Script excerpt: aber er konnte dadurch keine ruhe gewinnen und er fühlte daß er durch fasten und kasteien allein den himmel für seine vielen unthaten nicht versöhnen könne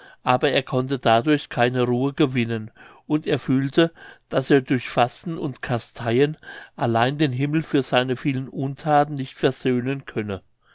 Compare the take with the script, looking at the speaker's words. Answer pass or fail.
pass